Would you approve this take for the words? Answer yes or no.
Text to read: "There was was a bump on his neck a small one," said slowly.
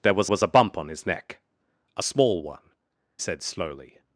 yes